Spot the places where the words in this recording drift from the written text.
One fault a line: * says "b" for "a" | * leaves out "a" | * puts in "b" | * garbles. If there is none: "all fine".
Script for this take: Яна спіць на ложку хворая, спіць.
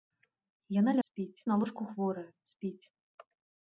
all fine